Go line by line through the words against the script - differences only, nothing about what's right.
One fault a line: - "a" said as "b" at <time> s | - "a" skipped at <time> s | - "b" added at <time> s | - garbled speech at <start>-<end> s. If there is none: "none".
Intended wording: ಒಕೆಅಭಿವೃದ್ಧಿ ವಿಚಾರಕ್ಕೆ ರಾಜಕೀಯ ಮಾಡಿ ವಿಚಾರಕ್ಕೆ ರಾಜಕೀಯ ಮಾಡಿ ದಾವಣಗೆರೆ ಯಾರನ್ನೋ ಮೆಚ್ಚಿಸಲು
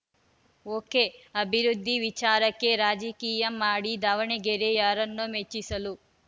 - "ವಿಚಾರಕ್ಕೆ ರಾಜಕೀಯ ಮಾಡಿ" skipped at 3.9 s